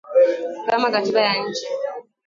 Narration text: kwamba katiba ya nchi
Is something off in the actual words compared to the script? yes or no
yes